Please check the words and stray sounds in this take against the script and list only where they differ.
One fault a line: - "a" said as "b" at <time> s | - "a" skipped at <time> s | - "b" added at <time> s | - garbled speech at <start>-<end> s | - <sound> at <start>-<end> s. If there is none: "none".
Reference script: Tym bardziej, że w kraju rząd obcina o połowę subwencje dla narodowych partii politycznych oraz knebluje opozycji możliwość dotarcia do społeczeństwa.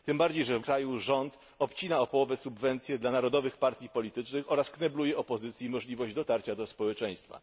none